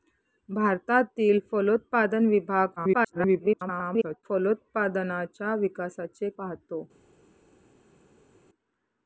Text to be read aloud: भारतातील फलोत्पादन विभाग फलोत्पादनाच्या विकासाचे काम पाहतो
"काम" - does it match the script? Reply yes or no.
no